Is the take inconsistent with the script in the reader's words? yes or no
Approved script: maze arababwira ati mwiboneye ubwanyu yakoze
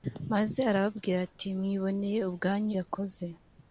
no